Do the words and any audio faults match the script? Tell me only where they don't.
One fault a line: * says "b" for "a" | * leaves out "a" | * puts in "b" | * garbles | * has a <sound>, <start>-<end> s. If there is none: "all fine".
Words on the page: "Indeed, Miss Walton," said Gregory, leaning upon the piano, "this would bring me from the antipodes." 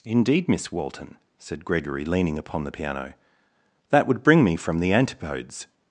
* says "that" for "this"